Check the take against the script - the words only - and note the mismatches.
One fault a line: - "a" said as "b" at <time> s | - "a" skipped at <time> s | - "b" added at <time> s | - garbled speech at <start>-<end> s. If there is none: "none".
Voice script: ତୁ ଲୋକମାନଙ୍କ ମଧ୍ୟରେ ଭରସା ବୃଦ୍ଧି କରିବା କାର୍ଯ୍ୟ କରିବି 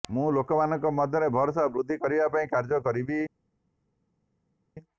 - "ତୁ" said as "ମୁଁ" at 0.1 s
- "ପାଇଁ" added at 2.3 s